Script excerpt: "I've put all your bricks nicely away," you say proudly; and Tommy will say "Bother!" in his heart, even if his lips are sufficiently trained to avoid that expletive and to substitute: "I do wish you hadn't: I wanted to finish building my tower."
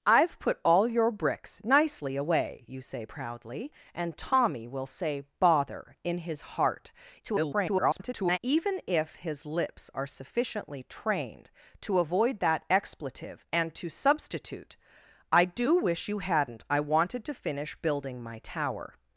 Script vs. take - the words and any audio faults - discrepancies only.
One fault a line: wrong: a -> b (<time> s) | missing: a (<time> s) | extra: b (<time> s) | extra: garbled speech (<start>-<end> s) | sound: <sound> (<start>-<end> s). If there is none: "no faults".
extra: garbled speech (7.2-8.4 s)